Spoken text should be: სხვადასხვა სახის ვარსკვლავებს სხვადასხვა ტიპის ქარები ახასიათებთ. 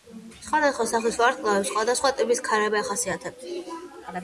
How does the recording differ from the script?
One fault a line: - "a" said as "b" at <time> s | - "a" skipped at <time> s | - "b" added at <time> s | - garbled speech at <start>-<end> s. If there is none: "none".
none